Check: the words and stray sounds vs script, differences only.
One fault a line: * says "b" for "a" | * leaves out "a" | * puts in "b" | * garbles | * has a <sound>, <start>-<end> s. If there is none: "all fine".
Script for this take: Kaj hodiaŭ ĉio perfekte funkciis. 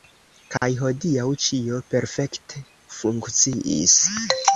* has a dropout, 0.6-0.6 s